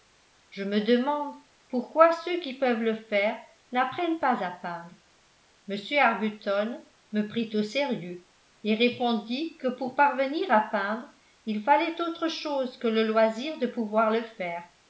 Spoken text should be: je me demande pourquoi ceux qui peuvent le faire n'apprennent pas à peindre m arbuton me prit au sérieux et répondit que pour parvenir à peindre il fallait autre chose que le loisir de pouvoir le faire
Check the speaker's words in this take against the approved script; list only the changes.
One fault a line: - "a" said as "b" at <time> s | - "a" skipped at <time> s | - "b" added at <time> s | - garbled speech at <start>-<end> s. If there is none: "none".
none